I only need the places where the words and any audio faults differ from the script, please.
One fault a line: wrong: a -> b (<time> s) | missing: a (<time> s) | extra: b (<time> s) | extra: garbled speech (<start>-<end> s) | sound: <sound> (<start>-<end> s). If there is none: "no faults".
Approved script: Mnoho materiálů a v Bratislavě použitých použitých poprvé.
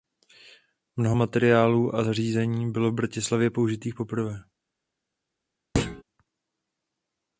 extra: zařízení bylo (2.0 s)
missing: použitých (4.0 s)
sound: thud (5.7-6.0 s)